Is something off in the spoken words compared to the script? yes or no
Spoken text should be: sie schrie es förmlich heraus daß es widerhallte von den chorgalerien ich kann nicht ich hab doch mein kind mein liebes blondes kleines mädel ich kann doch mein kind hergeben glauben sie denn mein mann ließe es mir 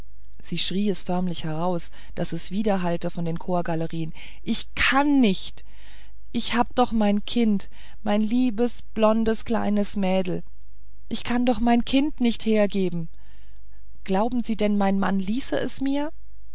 yes